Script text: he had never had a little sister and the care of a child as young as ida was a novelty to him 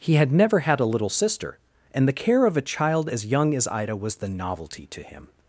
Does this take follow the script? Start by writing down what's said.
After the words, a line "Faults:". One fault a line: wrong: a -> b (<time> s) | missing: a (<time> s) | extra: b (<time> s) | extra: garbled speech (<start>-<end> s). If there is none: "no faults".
he had never had a little sister and the care of a child as young as ida was the novelty to him
Faults:
wrong: a -> the (4.2 s)